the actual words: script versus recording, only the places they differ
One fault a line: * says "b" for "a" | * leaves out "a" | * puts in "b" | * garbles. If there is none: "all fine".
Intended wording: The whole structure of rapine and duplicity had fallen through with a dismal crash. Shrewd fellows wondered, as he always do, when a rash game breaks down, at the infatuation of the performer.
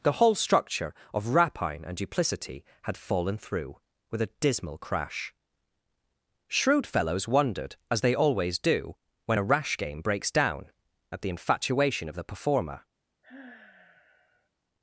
* says "they" for "he"